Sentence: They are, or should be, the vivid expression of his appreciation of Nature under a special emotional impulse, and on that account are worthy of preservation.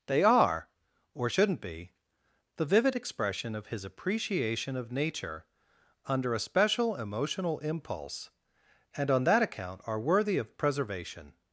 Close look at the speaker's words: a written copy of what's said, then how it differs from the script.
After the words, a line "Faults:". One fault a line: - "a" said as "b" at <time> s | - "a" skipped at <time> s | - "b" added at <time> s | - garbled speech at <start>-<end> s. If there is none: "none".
They are, or shouldn't be, the vivid expression of his appreciation of Nature under a special emotional impulse, and on that account are worthy of preservation.
Faults:
- "should" said as "shouldn't" at 1.3 s